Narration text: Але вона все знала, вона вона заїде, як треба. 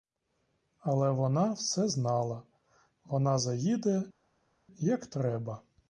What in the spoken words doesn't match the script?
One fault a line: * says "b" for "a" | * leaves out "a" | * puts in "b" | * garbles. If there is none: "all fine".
* leaves out "вона"